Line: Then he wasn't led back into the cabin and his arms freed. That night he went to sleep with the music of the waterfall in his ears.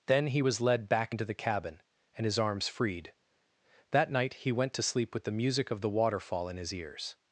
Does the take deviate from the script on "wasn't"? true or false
true